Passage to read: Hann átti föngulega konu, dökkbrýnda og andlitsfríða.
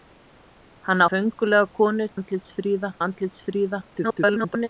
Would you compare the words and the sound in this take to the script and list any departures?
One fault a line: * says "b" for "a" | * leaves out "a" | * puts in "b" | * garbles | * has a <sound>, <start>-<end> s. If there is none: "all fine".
* leaves out "átti"
* says "andlitsfríða" for "dökkbrýnda"
* garbles